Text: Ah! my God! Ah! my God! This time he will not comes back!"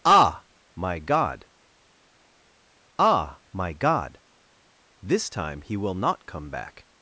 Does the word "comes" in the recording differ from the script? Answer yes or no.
yes